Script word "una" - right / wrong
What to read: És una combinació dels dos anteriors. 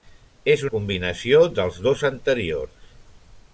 wrong